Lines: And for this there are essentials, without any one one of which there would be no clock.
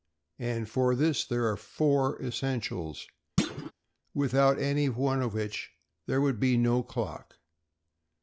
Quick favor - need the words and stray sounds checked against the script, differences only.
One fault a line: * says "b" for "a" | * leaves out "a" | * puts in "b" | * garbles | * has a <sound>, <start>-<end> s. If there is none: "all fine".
* puts in "four"
* has a thud, 3.4-3.7 s
* leaves out "one"